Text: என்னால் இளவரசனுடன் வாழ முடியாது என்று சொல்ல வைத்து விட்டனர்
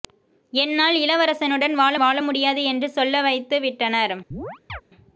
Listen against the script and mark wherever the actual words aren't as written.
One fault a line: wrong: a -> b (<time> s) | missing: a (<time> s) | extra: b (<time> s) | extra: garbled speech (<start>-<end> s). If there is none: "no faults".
extra: வாழ (2.0 s)